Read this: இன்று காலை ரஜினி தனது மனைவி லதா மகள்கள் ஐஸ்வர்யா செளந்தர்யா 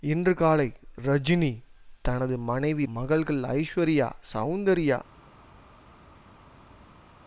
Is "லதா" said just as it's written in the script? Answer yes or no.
no